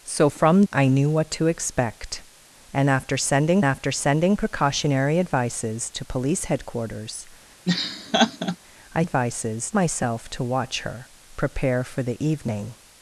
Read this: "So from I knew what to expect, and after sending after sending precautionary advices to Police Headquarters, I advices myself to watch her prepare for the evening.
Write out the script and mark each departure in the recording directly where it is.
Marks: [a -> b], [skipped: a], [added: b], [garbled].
"So from I knew what to expect, and after sending after sending precautionary advices to Police Headquarters, I advices myself to watch her prepare for the evening.